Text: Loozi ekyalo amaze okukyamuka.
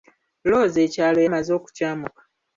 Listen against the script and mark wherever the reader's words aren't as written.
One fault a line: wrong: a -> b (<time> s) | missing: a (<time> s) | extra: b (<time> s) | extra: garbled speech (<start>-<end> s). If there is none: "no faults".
no faults